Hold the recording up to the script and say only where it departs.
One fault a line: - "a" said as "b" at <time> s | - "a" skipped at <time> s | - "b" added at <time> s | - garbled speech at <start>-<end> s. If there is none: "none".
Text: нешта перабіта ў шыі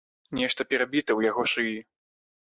- "яго" added at 1.3 s